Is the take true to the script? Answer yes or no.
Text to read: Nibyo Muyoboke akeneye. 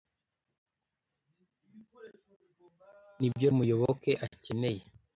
yes